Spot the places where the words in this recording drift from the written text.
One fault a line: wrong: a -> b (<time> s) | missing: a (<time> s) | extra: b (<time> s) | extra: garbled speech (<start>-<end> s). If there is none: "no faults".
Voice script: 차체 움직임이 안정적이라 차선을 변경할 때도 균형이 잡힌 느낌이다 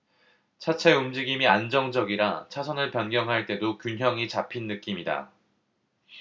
no faults